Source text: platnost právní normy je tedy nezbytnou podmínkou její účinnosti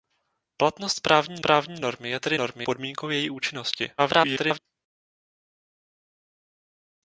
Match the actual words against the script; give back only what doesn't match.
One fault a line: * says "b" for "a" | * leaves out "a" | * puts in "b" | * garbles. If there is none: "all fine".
* puts in "právní"
* says "normy" for "nezbytnou"
* garbles